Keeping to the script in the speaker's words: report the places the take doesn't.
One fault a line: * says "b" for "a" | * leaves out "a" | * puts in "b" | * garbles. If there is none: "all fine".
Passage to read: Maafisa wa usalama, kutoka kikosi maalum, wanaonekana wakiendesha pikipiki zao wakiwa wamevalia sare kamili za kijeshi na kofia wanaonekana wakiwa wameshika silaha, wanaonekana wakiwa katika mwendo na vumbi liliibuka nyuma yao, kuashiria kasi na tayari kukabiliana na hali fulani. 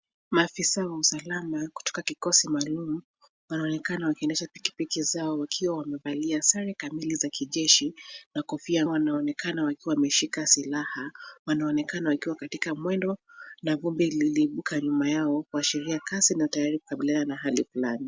all fine